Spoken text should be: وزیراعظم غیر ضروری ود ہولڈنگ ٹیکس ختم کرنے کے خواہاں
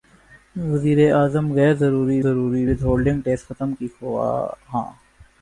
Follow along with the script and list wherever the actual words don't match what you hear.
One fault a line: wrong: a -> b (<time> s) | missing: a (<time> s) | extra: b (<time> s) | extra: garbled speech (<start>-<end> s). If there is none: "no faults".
extra: ضروری (2.2 s)
missing: کرنے (3.7 s)